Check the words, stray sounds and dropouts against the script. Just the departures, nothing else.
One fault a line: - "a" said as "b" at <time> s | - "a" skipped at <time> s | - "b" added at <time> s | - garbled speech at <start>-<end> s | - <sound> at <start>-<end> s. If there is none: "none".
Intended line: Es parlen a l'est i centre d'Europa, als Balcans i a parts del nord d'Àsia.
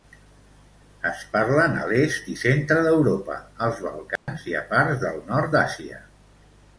- dropout at 4.2-4.3 s